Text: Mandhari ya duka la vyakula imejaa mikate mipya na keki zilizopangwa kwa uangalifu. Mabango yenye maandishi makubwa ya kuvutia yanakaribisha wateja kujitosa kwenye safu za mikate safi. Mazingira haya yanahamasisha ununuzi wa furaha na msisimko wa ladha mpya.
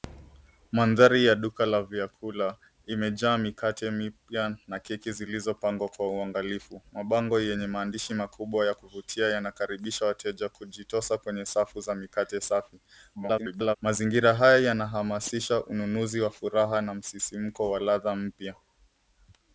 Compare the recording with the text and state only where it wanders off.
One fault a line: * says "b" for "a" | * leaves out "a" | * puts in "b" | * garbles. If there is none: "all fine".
* garbles